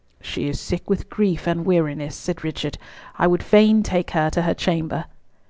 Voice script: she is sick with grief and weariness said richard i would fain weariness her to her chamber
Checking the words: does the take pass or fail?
fail